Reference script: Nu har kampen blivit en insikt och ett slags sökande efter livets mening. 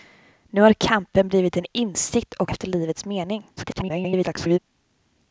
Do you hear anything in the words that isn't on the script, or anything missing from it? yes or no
yes